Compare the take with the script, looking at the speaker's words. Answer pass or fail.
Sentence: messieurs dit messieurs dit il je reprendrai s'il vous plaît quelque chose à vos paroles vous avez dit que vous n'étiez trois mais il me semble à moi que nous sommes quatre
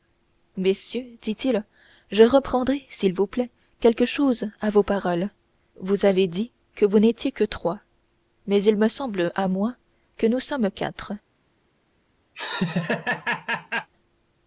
fail